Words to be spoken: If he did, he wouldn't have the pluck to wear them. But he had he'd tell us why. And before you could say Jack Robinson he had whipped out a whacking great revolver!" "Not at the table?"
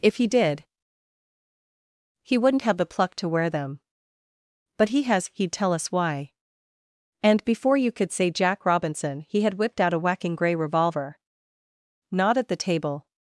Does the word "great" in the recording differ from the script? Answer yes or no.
yes